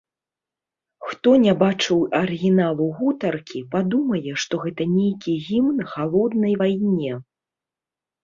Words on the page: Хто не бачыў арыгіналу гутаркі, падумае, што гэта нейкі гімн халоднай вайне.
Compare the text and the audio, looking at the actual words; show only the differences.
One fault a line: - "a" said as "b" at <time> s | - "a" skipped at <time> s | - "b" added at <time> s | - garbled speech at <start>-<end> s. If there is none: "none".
none